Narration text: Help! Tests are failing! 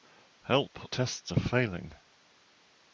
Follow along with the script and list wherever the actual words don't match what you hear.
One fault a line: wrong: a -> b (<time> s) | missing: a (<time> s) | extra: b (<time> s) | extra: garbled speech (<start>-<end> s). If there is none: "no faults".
no faults